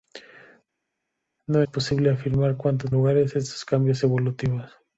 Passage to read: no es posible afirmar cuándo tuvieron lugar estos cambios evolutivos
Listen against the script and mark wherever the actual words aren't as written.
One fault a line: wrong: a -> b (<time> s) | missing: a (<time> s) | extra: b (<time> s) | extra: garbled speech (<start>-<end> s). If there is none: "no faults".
missing: es (1.6 s)
missing: tuvieron (2.9 s)